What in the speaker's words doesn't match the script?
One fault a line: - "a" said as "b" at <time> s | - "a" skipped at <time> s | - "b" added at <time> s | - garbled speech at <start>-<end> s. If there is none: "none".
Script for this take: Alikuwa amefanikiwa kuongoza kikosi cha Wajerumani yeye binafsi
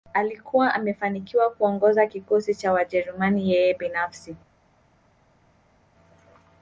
none